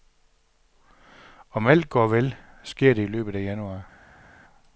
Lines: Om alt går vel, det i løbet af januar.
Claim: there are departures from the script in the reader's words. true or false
true